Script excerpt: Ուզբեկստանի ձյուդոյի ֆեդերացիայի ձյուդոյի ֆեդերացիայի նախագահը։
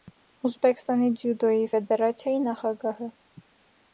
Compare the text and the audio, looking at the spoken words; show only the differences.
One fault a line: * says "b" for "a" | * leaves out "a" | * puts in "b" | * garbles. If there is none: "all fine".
* leaves out "ձյուդոյի ֆեդերացիայի"